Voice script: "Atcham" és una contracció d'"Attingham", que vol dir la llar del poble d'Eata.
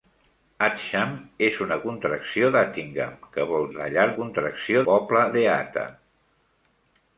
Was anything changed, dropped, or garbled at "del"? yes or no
yes